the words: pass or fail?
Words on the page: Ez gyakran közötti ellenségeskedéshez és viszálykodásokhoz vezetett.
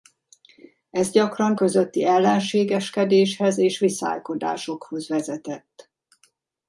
pass